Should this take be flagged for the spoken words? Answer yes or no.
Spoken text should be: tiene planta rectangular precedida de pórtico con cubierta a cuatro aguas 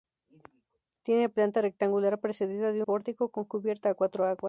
no